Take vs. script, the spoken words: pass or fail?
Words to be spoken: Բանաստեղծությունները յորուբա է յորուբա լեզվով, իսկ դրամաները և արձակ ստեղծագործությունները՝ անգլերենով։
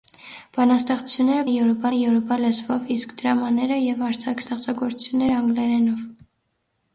pass